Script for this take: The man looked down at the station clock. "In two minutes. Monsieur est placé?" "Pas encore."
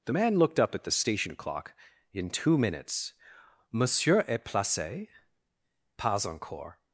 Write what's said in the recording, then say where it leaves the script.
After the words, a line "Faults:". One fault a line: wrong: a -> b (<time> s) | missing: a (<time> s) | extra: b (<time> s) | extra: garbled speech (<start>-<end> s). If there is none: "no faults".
The man looked up at the station clock. "In two minutes. Monsieur est placé?" "Pas encore."
Faults:
wrong: down -> up (0.6 s)